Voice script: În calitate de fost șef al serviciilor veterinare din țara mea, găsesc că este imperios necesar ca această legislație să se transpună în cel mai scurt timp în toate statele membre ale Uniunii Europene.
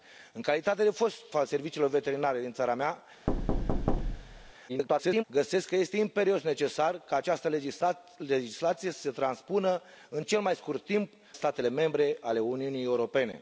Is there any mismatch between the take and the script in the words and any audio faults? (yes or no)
yes